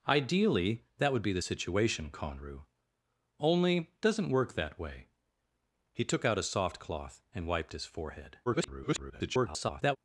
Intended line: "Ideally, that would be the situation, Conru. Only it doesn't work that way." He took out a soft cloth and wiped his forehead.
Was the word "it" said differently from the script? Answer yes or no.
yes